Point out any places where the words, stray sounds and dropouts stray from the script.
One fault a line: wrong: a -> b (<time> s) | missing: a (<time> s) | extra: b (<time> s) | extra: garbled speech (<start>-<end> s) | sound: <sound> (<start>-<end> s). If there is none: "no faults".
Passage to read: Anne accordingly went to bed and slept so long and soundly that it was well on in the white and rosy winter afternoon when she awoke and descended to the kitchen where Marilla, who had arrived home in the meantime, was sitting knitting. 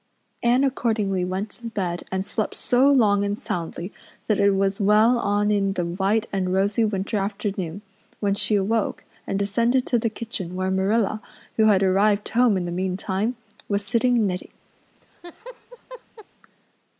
sound: laugh (14.9-16.3 s)